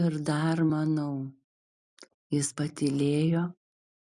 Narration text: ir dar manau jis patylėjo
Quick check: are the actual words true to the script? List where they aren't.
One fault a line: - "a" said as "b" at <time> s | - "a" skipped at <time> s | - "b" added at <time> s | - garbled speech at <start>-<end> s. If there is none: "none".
none